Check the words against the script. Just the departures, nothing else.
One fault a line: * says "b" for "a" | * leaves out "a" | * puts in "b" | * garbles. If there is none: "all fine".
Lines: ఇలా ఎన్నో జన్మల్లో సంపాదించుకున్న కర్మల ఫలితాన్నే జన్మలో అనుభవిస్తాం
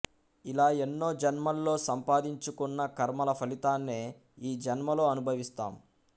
* puts in "ఈ"